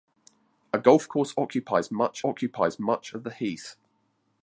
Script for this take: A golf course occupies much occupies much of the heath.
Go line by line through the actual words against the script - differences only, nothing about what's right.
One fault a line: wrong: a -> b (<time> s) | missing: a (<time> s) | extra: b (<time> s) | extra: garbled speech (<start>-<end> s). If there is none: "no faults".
no faults